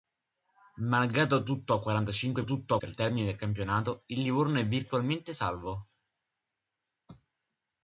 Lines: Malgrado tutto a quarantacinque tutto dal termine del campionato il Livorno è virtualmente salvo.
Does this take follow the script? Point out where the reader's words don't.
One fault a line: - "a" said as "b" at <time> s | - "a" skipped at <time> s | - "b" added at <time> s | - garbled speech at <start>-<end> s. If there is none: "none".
none